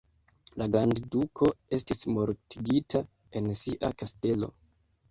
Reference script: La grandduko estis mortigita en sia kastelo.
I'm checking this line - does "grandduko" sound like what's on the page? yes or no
yes